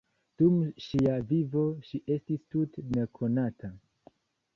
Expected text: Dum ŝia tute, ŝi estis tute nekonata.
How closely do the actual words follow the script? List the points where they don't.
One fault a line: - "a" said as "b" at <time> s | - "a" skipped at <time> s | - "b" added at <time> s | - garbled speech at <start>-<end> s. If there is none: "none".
- "tute" said as "vivo" at 1.3 s